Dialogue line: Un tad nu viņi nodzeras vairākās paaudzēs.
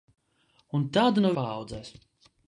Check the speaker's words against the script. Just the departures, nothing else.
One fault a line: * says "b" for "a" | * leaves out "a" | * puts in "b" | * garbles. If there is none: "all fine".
* leaves out "viņi nodzeras vairākās"